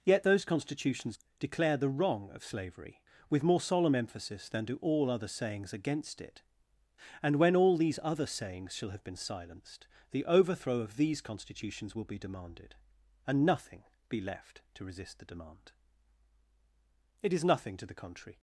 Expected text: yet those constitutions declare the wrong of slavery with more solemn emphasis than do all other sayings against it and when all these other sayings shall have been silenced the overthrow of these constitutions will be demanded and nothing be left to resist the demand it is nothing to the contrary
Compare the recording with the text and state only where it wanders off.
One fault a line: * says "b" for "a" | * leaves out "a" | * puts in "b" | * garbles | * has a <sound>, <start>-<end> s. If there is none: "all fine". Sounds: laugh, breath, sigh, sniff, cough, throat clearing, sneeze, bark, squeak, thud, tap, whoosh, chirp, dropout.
all fine